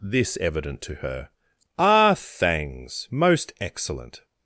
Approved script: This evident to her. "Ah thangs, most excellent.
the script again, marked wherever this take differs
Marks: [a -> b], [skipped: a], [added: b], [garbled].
This evident to her. "Ah thangs, most excellent.